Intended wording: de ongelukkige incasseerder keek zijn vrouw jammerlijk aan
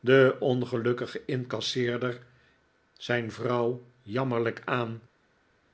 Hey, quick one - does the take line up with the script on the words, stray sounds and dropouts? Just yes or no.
no